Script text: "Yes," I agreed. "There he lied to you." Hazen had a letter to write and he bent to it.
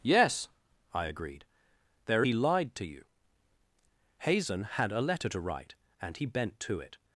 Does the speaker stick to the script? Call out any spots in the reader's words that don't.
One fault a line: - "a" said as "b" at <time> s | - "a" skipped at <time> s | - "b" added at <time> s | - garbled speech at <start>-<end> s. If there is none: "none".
none